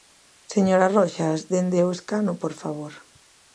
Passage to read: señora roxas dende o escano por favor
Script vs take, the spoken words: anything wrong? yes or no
no